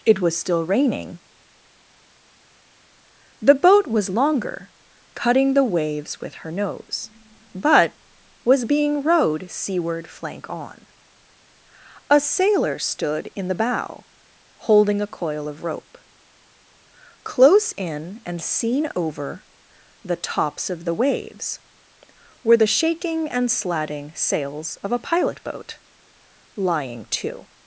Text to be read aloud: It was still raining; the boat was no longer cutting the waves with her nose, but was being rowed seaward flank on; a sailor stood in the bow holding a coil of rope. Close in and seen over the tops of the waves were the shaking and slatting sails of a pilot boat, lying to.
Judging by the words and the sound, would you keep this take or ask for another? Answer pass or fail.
fail